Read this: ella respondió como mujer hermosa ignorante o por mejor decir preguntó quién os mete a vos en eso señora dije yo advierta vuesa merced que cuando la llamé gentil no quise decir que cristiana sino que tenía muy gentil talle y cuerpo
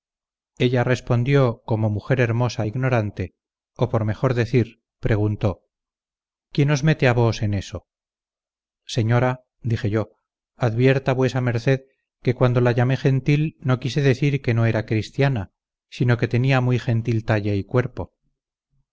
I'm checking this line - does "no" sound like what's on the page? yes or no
yes